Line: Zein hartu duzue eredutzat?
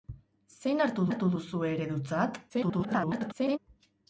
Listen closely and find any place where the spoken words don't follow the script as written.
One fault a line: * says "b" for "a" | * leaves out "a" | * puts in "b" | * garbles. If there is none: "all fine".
* puts in "hartu"
* garbles